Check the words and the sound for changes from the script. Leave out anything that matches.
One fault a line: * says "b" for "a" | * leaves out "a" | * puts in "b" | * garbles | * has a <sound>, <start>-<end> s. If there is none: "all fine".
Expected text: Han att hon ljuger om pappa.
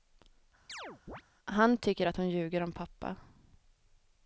* has a chirp, 0.7-1.2 s
* puts in "tycker"